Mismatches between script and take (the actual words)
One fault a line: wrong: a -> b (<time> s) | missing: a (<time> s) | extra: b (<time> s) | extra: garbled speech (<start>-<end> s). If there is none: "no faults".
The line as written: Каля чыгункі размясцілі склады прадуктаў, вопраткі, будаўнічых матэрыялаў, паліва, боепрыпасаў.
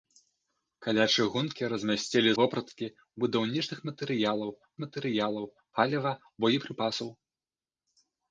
missing: склады прадуктаў (2.3 s)
extra: матэрыялаў (4.9 s)